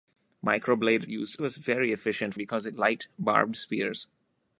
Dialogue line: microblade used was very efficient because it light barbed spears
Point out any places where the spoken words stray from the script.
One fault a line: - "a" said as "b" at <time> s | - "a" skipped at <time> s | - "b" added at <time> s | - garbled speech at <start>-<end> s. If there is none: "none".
none